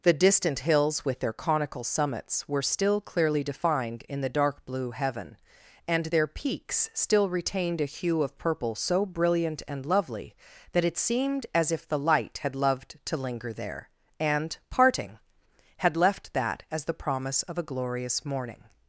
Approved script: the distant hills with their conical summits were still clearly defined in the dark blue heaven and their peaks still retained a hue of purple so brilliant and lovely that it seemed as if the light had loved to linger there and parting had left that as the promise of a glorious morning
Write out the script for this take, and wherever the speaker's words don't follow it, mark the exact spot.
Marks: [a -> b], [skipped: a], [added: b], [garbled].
the distant hills with their conical summits were still clearly defined in the dark blue heaven and their peaks still retained a hue of purple so brilliant and lovely that it seemed as if the light had loved to linger there and parting had left that as the promise of a glorious morning